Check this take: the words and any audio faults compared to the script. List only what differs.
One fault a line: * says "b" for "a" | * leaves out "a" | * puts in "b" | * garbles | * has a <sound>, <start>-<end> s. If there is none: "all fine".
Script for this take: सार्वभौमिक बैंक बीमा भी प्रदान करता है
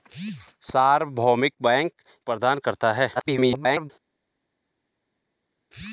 * leaves out "बीमा भी"
* garbles